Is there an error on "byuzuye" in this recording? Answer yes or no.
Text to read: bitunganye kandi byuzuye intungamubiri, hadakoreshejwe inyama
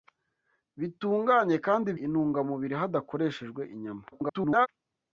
yes